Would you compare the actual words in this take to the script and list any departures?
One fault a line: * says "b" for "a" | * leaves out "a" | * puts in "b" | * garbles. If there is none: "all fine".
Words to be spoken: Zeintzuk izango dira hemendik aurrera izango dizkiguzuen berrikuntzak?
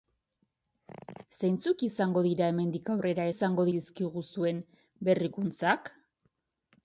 all fine